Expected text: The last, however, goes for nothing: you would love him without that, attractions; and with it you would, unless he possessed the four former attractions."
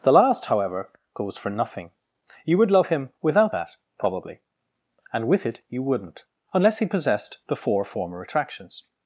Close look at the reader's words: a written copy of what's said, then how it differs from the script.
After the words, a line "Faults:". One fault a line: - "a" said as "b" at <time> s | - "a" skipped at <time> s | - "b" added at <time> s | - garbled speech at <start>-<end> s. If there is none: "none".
The last, however, goes for nothing: you would love him without that, probably; and with it you wouldn't, unless he possessed the four former attractions."
Faults:
- "attractions" said as "probably" at 4.0 s
- "would" said as "wouldn't" at 5.8 s